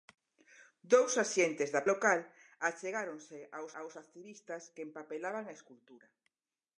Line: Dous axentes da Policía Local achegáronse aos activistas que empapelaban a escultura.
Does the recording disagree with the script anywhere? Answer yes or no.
yes